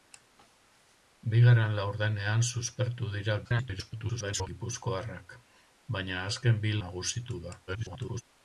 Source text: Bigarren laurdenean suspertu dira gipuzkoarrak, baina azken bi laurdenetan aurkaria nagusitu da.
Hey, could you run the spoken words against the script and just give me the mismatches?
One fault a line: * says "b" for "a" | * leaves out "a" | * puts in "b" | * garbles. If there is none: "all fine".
* garbles
* leaves out "laurdenetan aurkaria"
* garbles